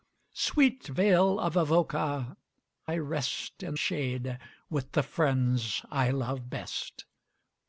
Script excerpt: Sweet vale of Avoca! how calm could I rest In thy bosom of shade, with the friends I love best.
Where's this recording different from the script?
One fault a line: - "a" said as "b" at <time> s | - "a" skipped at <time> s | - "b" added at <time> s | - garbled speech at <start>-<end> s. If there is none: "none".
- "how calm could" skipped at 2.4 s
- "thy bosom of" skipped at 3.8 s